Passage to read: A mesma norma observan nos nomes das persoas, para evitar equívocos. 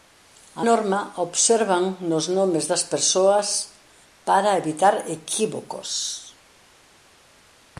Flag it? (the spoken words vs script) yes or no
yes